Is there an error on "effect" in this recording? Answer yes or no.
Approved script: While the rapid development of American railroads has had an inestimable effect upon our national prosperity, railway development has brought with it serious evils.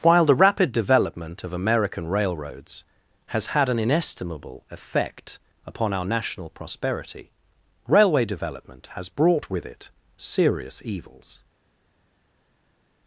no